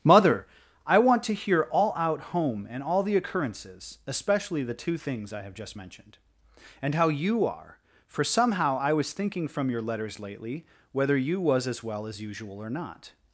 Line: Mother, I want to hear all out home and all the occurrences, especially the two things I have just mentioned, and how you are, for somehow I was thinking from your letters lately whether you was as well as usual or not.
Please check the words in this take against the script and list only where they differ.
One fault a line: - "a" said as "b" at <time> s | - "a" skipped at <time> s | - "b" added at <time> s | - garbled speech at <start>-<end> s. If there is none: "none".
none